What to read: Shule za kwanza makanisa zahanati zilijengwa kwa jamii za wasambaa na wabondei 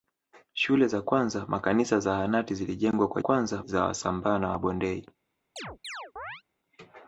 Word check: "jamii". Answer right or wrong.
wrong